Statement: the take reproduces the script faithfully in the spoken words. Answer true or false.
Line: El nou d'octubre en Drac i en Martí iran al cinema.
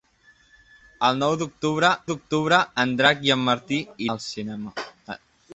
false